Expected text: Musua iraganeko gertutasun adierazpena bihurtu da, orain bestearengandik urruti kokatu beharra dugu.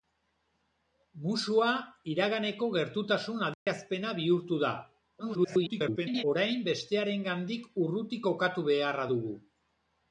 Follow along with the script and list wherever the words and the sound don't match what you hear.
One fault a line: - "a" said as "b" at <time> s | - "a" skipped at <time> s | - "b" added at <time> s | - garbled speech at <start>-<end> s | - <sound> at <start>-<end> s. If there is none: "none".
- dropout at 3.5-3.7 s
- garbled speech at 5.2-6.2 s